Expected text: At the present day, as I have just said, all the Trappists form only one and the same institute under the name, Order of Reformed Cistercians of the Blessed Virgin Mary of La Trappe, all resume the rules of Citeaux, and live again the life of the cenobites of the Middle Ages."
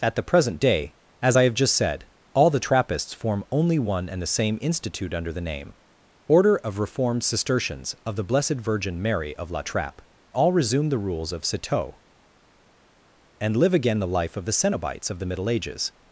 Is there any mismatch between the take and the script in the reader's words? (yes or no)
no